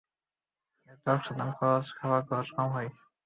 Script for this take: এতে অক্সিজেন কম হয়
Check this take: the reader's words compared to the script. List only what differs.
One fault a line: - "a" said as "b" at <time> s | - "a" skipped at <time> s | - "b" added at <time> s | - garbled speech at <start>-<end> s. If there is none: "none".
- "খরচ খাবার খরচ" added at 1.6 s